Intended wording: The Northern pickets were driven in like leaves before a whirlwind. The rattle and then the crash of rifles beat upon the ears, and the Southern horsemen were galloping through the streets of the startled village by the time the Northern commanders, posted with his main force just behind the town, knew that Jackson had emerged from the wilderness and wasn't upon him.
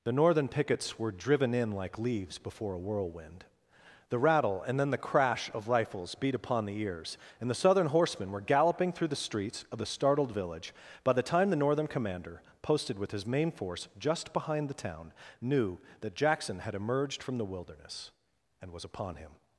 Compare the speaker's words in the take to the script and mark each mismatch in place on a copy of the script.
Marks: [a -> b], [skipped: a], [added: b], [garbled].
The Northern pickets were driven in like leaves before a whirlwind. The rattle and then the crash of rifles beat upon the ears, and the Southern horsemen were galloping through the streets of the startled village by the time the Northern [commanders, -> commander] posted with his main force just behind the town, knew that Jackson had emerged from the wilderness and [wasn't -> was] upon him.